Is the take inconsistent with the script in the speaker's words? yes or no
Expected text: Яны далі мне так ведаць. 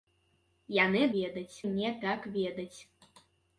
yes